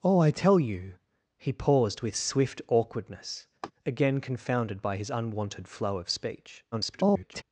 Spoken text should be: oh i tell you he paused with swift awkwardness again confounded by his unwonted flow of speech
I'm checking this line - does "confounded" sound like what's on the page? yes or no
yes